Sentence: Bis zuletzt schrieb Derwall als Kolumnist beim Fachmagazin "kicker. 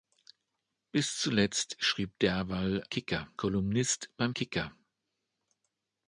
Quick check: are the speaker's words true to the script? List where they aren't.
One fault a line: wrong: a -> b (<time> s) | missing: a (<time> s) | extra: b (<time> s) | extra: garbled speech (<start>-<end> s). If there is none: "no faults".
wrong: als -> kicker (2.9 s)
missing: Fachmagazin (4.3 s)